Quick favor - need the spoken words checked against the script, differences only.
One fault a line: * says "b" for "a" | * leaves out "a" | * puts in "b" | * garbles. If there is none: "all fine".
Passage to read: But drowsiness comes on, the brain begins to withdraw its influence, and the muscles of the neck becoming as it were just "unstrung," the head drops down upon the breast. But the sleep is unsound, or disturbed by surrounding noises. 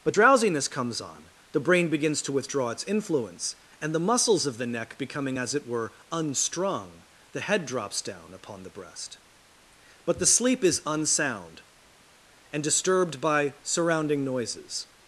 * leaves out "just"
* says "and" for "or"